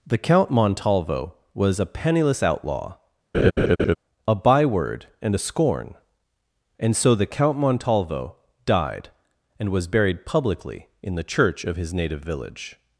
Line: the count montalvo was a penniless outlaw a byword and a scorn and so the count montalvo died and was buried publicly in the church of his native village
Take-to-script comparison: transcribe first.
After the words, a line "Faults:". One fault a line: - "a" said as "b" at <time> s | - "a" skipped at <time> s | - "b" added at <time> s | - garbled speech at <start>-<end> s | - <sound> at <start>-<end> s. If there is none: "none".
the count montalvo was a penniless outlaw a byword and a scorn and so the count montalvo died and was buried publicly in the church of his native village
Faults:
- laugh at 3.3-4.0 s